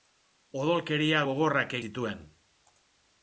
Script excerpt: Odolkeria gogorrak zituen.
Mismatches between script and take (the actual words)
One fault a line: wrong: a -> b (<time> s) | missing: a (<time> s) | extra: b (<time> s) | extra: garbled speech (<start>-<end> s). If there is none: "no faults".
no faults